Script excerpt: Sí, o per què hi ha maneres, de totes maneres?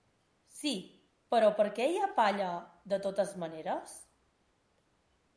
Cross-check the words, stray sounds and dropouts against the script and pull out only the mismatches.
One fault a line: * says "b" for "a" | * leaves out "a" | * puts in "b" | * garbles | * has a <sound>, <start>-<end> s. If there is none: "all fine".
* says "però" for "o"
* says "palla" for "maneres"